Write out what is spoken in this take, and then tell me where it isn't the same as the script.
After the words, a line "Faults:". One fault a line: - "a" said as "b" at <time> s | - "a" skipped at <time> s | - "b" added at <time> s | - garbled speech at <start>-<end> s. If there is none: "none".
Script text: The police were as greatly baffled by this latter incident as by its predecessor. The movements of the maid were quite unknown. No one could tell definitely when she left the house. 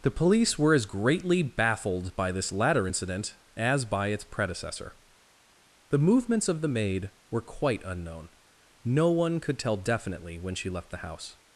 The police were as greatly baffled by this latter incident as by its predecessor. The movements of the maid were quite unknown. No one could tell definitely when she left the house.
Faults:
none